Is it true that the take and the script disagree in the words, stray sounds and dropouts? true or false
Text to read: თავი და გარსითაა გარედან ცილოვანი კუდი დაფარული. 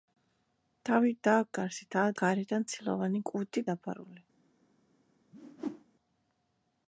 true